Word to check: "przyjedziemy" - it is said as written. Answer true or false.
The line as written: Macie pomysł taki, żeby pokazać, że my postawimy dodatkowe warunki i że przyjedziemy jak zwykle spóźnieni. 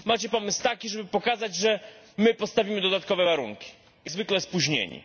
false